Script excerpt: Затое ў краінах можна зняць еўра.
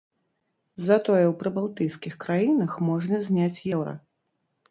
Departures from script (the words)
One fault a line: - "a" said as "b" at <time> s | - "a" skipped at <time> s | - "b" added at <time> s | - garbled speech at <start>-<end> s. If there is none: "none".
- "прыбалтыйскіх" added at 1.4 s